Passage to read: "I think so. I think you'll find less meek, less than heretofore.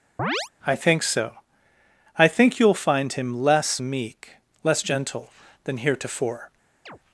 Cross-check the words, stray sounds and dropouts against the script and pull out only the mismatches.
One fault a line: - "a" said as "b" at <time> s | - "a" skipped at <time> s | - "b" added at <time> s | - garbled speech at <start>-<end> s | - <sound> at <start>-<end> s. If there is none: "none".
- chirp at 0.2-0.5 s
- "him" added at 3.1 s
- "gentle" added at 4.8 s
- chirp at 6.9-7.0 s